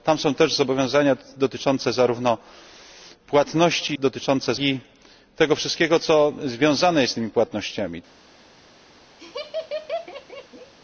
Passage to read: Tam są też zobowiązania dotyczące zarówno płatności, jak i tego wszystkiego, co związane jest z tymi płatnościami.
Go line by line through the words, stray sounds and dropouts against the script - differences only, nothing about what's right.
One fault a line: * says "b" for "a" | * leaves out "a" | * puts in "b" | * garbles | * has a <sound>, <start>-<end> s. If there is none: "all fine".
* says "dotyczące" for "jak"
* has a laugh, 9.2-10.7 s